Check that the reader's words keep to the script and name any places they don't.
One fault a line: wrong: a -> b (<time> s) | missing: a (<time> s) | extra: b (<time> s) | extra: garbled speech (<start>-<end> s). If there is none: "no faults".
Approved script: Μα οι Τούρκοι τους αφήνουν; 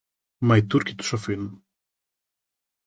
no faults